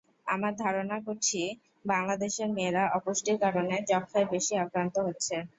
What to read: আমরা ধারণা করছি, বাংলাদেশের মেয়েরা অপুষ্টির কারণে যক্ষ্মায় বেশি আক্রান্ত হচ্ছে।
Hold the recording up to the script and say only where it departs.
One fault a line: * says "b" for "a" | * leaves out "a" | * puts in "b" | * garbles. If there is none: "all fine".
all fine